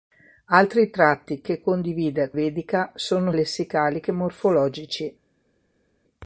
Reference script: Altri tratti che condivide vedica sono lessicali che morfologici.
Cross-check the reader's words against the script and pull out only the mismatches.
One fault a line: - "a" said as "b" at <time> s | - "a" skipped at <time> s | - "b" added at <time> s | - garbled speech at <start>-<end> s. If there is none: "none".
none